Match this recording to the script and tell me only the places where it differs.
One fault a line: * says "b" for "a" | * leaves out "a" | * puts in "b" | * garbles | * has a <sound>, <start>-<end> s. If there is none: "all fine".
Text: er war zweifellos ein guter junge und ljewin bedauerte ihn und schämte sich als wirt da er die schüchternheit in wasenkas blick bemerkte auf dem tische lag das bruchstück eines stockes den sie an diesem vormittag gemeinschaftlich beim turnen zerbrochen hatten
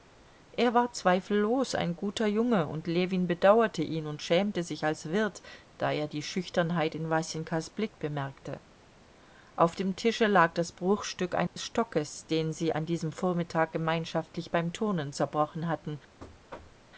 * has a dropout, 11.5-11.6 s
* has a thud, 16.2-16.9 s